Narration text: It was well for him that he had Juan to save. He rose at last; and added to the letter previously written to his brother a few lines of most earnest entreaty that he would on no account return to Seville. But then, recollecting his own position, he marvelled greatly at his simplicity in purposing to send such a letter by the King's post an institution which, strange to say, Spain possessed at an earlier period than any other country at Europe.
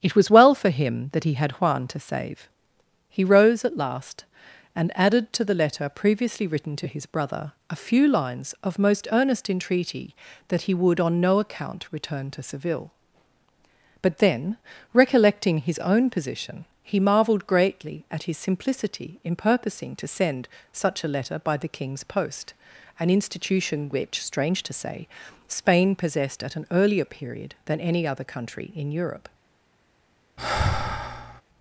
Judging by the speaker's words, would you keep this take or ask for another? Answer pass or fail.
fail